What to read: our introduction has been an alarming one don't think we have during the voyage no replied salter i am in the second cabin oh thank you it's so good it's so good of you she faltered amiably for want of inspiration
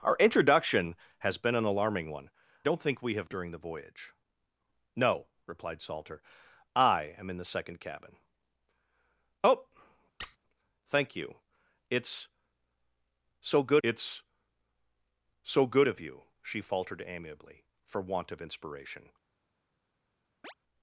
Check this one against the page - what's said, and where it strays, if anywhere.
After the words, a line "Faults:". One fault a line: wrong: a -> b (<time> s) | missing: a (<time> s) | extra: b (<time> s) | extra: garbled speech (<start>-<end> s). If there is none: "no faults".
our introduction has been an alarming one don't think we have during the voyage no replied salter i am in the second cabin oh thank you it's so good it's so good of you she faltered amiably for want of inspiration
Faults:
no faults